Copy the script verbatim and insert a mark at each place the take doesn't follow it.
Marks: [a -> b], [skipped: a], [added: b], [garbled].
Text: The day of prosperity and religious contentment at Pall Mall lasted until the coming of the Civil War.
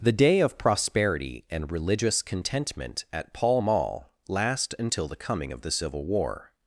The day of prosperity and religious contentment at Pall Mall [lasted -> last] until the coming of the Civil War.